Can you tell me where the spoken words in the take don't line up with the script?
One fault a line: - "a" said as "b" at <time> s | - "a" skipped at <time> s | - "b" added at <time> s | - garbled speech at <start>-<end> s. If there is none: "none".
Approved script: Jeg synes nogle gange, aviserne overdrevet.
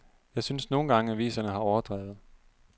- "har" added at 1.5 s